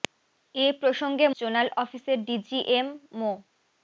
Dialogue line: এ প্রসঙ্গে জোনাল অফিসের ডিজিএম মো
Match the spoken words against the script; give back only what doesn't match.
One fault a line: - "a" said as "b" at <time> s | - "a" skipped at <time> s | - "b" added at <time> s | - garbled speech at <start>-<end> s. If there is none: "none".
none